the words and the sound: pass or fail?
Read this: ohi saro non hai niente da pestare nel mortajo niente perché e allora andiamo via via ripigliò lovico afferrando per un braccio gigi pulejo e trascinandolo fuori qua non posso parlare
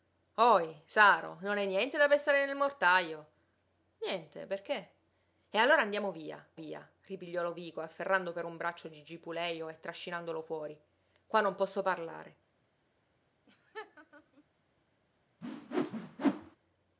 fail